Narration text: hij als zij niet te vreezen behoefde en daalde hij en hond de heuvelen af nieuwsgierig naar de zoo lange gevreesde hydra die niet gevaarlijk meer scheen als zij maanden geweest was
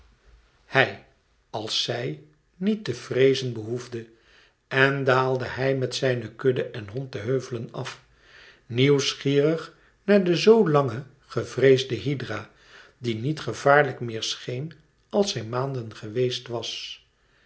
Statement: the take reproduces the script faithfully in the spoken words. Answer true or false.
false